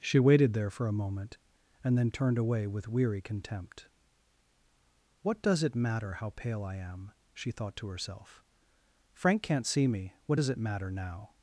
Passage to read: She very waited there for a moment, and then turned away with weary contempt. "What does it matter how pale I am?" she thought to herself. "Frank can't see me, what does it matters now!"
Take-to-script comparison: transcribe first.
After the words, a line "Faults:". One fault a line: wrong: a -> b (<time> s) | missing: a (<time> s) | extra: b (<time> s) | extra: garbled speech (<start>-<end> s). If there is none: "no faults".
She waited there for a moment, and then turned away with weary contempt. "What does it matter how pale I am?" she thought to herself. "Frank can't see me, what does it matter now!"
Faults:
missing: very (0.2 s)
wrong: matters -> matter (10.6 s)